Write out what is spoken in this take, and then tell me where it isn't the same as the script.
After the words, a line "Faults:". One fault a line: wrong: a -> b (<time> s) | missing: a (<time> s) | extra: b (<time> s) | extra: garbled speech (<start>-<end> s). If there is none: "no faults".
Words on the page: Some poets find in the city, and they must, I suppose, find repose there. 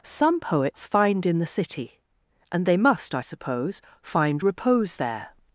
Some poets find in the city, and they must, I suppose, find repose there.
Faults:
no faults